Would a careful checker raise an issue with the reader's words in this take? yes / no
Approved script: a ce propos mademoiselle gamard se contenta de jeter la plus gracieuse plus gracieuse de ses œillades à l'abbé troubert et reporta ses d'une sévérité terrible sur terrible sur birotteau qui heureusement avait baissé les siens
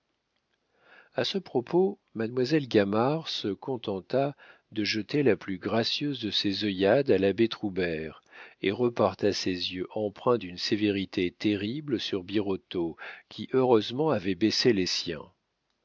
yes